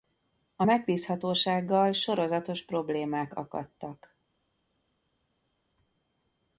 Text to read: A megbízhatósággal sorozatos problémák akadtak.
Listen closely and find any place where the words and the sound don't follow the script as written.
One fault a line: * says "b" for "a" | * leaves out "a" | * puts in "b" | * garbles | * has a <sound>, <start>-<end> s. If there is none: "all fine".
all fine